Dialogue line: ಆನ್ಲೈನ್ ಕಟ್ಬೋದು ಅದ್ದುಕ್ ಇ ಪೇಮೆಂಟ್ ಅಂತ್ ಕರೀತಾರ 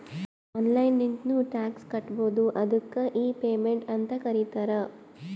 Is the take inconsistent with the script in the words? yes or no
yes